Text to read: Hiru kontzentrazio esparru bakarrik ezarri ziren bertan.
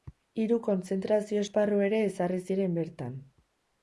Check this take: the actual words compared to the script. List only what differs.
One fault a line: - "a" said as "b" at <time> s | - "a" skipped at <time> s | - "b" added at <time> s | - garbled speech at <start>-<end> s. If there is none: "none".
- "bakarrik" said as "ere" at 1.9 s